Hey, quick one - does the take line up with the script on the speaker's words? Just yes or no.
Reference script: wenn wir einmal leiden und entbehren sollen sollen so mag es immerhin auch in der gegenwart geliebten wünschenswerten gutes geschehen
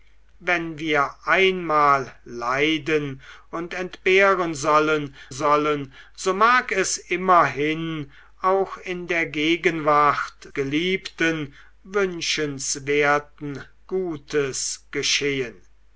yes